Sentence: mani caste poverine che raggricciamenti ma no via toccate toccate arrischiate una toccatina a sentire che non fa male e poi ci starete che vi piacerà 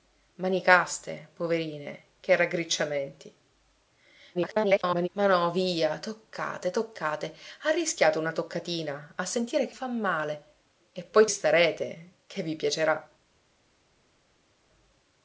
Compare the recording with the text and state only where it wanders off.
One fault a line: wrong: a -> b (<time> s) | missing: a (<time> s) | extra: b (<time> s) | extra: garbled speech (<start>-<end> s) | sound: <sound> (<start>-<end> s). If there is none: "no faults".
extra: garbled speech (4.3-5.1 s)
missing: non (9.8 s)
missing: ci (11.2 s)